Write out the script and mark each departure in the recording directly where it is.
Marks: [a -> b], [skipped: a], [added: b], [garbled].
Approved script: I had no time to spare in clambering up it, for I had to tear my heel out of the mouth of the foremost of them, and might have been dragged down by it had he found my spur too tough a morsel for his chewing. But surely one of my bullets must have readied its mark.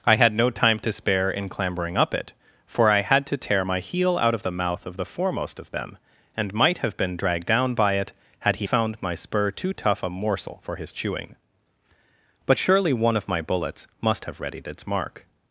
I had no time to spare in clambering up it, for I had to tear my heel out of the mouth of the foremost of them, and might have been dragged down by it had he found my spur too tough a morsel for his chewing. But surely one of my bullets must have readied its mark.